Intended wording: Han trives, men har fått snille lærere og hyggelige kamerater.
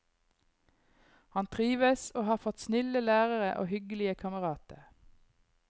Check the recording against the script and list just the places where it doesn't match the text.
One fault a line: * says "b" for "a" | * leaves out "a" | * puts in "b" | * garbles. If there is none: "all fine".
* says "og" for "men"